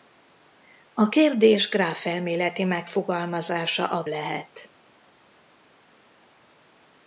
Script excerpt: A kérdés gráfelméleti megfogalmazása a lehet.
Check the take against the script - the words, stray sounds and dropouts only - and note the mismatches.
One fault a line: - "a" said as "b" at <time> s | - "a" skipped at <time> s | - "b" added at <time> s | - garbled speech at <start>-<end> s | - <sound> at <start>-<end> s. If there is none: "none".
none